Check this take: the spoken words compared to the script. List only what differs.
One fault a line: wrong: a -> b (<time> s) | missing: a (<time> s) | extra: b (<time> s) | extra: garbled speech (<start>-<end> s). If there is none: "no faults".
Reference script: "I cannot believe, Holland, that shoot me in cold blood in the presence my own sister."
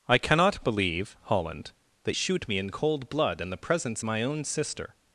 no faults